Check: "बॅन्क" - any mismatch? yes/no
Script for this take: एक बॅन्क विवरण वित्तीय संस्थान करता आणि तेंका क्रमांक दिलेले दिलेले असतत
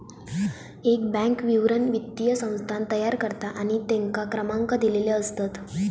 no